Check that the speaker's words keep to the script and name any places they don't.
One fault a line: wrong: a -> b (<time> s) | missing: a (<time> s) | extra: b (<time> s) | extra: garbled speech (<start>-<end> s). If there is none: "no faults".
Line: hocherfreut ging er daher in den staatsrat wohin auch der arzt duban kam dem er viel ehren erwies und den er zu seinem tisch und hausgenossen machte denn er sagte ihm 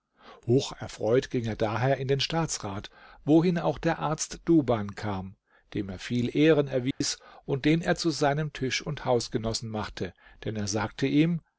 no faults